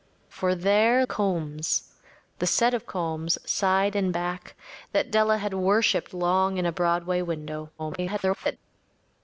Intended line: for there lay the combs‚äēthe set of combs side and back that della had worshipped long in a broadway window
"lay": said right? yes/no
no